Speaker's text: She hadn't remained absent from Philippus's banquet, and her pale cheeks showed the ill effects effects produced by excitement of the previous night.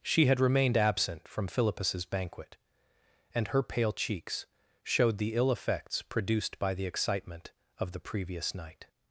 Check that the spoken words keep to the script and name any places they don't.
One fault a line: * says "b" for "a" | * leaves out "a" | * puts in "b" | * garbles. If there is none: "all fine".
* says "had" for "hadn't"
* leaves out "effects"
* puts in "the"